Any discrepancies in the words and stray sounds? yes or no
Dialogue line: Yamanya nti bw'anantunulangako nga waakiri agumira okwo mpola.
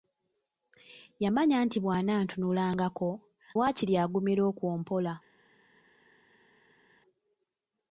yes